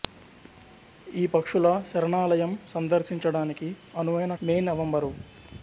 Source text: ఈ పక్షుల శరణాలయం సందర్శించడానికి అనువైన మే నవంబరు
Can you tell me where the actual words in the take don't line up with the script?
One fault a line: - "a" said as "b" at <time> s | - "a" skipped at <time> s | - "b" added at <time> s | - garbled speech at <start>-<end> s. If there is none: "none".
none